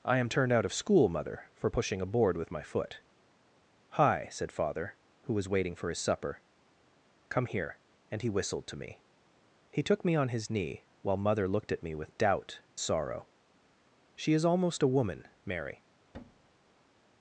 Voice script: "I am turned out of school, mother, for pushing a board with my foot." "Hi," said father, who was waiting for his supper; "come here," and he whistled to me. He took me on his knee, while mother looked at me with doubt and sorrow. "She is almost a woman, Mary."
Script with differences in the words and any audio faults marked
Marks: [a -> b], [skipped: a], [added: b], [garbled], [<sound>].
"I am turned out of school, mother, for pushing a board with my foot." "Hi," said father, who was waiting for his supper; "come here," and he whistled to me. He took me on his knee, while mother looked at me with doubt [skipped: and] sorrow. "She is almost a woman, Mary." [thud]